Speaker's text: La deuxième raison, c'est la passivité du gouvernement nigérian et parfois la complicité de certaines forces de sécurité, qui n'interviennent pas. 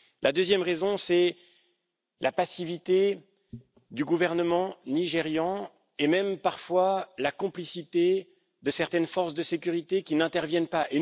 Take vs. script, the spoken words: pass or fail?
fail